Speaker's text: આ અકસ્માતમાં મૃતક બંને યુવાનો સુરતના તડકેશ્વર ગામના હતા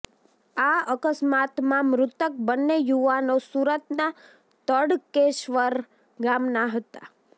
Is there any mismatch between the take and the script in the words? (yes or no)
no